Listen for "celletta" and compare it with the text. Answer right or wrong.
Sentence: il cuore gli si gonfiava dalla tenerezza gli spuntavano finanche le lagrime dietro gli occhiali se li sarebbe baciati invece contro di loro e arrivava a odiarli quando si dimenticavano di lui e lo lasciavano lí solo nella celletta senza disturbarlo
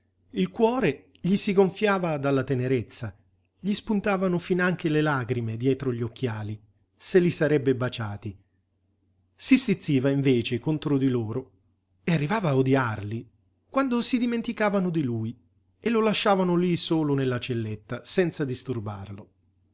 right